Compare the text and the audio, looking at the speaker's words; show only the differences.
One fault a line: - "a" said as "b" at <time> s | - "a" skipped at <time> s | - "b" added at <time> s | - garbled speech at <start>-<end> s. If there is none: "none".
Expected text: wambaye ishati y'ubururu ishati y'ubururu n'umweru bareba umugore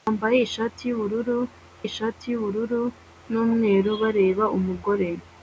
none